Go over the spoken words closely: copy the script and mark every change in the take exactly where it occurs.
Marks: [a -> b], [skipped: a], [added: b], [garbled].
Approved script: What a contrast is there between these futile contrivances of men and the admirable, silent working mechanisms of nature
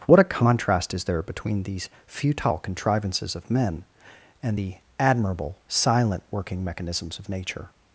What a contrast is there between these futile contrivances of men and the admirable, silent working mechanisms of nature